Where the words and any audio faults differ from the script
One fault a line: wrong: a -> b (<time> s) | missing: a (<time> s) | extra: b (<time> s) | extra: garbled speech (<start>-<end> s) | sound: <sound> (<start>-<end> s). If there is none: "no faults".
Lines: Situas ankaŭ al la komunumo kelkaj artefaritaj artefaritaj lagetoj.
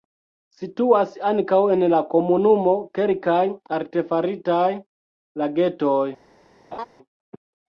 wrong: al -> en (1.7 s)
missing: artefaritaj (4.7 s)
sound: laugh (6.7-6.9 s)